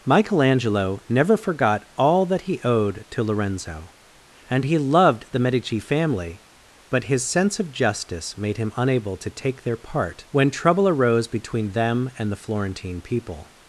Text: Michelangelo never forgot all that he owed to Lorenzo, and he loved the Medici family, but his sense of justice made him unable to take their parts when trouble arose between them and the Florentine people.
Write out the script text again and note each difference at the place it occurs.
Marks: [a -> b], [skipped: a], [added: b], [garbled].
Michelangelo never forgot all that he owed to Lorenzo, and he loved the Medici family, but his sense of justice made him unable to take their [parts -> part] when trouble arose between them and the Florentine people.